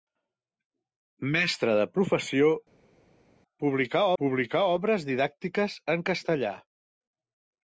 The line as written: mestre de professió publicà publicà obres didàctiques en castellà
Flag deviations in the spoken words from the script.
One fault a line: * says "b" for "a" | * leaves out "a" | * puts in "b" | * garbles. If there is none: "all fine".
all fine